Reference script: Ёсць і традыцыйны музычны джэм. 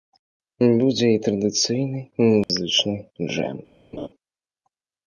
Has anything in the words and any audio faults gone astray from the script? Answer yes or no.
yes